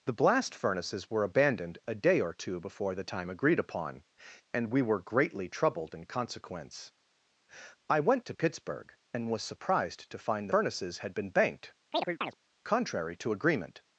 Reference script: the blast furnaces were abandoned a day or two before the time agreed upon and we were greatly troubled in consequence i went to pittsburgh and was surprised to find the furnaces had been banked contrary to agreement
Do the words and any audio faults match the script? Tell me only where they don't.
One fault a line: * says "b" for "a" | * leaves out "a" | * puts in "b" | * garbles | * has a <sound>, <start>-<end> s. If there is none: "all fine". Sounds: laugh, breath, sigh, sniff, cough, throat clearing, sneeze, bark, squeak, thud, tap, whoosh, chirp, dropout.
* leaves out "the"
* has a chirp, 11.9-12.3 s